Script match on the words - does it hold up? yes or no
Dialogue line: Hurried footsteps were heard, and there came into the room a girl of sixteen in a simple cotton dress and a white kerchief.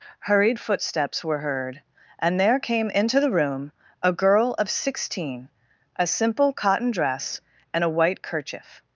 no